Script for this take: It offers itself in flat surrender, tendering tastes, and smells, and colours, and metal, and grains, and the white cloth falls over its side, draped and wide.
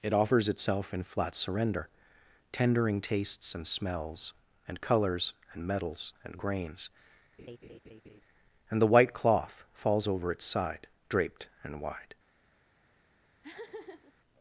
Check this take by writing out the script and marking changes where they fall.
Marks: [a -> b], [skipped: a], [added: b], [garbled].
It offers itself in flat surrender, tendering tastes, and smells, and colours, and [metal, -> metals] and grains, and the white cloth falls over its side, draped and wide.